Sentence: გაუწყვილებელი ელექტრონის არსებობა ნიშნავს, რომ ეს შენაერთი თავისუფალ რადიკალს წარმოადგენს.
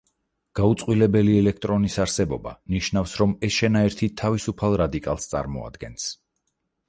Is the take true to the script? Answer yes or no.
yes